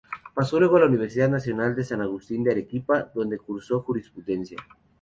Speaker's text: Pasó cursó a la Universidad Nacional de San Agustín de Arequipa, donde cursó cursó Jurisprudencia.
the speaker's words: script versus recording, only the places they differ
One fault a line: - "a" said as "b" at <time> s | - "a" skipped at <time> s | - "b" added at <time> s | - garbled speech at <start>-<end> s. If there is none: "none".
- "cursó" said as "luego" at 0.6 s
- "cursó" skipped at 3.8 s